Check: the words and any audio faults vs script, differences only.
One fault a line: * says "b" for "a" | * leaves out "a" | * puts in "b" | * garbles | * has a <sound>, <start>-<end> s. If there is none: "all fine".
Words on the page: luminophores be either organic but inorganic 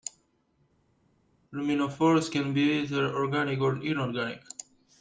* puts in "can"
* says "or" for "but"